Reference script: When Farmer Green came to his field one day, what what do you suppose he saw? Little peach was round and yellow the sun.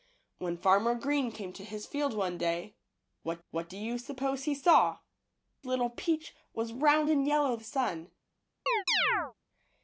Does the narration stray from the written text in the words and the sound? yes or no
yes